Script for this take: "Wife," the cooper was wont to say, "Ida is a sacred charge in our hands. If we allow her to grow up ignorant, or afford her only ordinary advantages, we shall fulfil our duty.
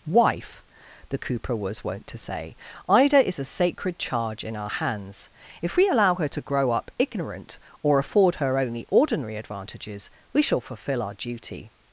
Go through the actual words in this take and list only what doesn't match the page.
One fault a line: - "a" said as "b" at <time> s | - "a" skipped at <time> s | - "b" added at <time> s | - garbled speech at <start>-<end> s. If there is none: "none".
none